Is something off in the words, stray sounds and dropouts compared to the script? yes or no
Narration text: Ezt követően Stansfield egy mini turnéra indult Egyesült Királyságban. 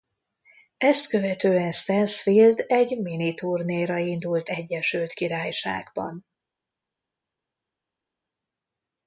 no